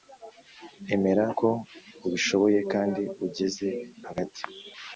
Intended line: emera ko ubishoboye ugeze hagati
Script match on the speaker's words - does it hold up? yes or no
no